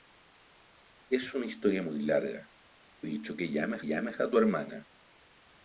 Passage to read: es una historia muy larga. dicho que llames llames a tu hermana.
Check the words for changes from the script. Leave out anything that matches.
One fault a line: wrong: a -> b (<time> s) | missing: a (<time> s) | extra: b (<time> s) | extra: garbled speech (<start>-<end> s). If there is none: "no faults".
no faults